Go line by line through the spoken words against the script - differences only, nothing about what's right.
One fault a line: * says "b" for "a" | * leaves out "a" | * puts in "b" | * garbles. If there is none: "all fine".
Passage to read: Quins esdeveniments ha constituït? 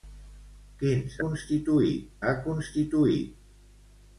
* says "constituït" for "esdeveniments"